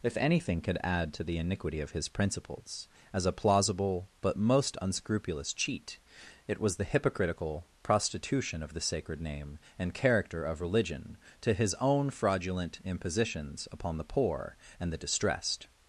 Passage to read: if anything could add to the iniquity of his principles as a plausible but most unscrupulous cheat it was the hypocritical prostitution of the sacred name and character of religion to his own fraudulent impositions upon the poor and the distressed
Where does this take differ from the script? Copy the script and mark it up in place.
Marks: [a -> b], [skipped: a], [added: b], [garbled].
if anything could add to the iniquity of his principles as a plausible but most unscrupulous cheat it was the hypocritical prostitution of the sacred name and character of religion to his own fraudulent impositions upon the poor and the distressed